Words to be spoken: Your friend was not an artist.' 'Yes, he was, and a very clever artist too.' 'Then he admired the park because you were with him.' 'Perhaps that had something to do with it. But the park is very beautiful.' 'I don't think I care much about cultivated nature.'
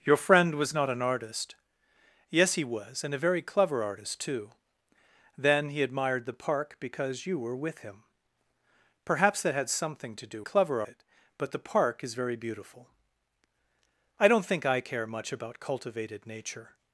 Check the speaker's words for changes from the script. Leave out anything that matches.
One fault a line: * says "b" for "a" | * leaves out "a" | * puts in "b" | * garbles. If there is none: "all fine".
* says "clever" for "with"